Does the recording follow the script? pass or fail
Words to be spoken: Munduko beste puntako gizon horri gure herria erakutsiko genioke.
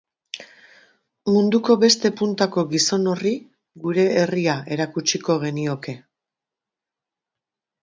pass